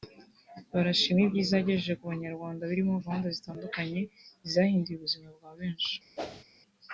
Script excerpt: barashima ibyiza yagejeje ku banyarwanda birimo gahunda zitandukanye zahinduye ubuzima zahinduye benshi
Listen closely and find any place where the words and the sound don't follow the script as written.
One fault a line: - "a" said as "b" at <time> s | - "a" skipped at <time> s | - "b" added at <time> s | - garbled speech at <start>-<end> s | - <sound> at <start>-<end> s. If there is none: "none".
- "zahinduye" said as "bwa" at 5.4 s
- whoosh at 6.2-6.4 s